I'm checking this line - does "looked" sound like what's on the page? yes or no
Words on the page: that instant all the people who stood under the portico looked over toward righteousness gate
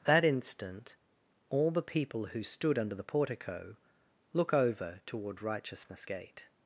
no